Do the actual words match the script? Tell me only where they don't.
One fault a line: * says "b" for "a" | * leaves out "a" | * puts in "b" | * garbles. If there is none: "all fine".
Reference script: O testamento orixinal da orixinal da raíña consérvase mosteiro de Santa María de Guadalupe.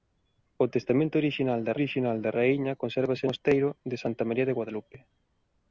all fine